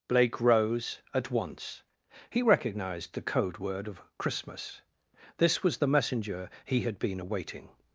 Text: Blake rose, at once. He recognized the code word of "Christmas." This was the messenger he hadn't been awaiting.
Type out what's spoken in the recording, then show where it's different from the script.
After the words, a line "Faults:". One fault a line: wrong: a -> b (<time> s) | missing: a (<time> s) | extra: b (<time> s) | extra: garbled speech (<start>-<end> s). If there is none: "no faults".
Blake rose, at once. He recognized the code word of "Christmas." This was the messenger he had been awaiting.
Faults:
wrong: hadn't -> had (6.8 s)